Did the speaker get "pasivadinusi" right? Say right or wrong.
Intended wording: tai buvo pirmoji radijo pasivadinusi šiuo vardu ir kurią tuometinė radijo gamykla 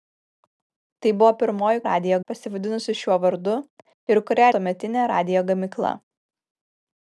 right